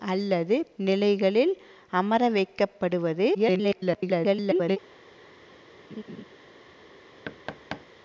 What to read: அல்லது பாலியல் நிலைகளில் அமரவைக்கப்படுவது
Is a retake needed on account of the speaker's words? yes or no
yes